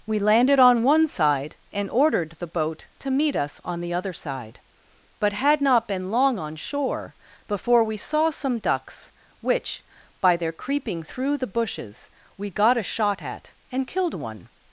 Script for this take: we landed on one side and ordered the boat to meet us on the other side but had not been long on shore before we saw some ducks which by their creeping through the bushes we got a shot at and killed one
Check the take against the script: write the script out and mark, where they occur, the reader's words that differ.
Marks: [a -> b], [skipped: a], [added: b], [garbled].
we landed on one side and ordered the boat to meet us on the other side but had not been long on shore before we saw some ducks which by their creeping through the bushes we got a shot at and killed one